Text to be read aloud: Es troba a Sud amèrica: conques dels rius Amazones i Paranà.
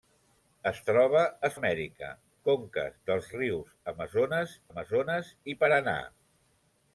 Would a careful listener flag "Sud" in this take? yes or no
yes